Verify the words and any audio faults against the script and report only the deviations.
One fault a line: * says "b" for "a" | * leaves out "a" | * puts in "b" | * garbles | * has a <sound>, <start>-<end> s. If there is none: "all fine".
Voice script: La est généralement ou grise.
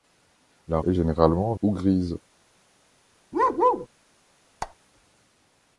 * has a bark, 3.3-3.9 s
* has a squeak, 4.6-4.8 s